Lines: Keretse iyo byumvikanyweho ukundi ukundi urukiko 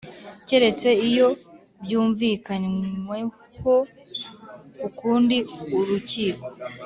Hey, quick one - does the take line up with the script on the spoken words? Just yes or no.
no